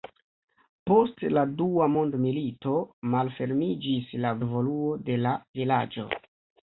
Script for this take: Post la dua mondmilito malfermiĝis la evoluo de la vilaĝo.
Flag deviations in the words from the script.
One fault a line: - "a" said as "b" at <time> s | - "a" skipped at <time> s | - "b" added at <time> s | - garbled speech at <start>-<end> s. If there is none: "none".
none